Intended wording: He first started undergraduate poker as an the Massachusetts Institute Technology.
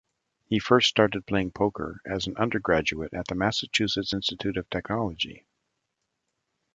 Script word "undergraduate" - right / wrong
wrong